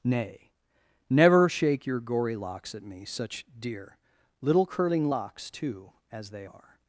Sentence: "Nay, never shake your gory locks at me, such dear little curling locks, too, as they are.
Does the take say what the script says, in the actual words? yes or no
yes